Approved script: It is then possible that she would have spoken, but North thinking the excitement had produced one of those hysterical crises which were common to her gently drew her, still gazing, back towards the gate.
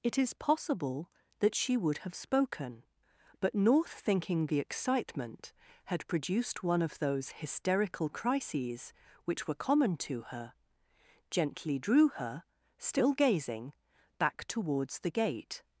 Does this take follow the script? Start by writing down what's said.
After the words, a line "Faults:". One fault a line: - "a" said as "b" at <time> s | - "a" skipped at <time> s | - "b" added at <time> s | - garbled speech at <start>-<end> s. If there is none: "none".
It is possible that she would have spoken, but North thinking the excitement had produced one of those hysterical crises which were common to her gently drew her, still gazing, back towards the gate.
Faults:
- "then" skipped at 0.3 s